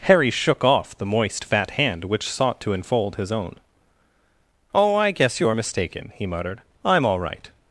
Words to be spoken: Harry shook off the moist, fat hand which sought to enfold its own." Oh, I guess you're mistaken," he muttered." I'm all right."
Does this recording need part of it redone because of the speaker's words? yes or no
yes